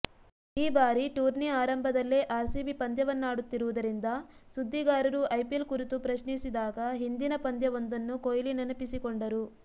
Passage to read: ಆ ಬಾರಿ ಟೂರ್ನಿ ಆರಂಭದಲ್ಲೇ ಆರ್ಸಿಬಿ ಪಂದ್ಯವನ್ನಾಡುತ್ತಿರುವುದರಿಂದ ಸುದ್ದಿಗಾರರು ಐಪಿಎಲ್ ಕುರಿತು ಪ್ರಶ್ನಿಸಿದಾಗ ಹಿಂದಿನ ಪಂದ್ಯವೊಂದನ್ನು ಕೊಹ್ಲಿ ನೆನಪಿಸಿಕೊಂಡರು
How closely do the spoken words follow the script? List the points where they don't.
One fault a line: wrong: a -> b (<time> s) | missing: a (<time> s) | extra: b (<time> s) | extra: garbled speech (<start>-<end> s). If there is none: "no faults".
wrong: ಆ -> ಈ (0.6 s)